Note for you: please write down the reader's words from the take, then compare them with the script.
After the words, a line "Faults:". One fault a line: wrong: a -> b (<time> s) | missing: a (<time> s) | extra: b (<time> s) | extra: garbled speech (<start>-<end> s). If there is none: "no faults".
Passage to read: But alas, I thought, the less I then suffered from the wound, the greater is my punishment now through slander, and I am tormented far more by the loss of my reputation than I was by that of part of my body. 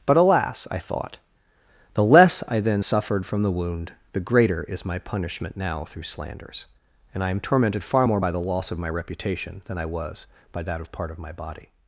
But alas, I thought, the less I then suffered from the wound, the greater is my punishment now through slanders, and I am tormented far more by the loss of my reputation than I was by that of part of my body.
Faults:
wrong: slander -> slanders (6.0 s)